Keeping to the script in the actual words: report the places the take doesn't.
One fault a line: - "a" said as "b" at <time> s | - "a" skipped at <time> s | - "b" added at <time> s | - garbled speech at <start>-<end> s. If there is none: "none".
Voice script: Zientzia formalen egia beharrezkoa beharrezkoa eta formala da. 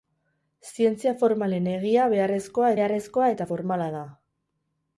none